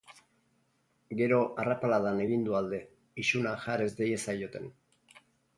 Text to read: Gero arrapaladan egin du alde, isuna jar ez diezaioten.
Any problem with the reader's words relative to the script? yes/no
no